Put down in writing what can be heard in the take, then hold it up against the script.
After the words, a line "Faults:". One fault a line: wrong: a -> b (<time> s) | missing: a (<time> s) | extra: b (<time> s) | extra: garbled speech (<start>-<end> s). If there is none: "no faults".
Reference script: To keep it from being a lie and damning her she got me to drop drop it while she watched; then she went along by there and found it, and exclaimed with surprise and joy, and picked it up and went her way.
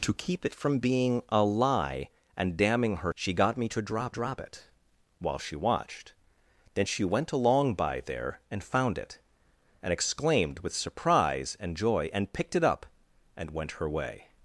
To keep it from being a lie and damning her she got me to drop drop it while she watched; then she went along by there and found it, and exclaimed with surprise and joy, and picked it up and went her way.
Faults:
no faults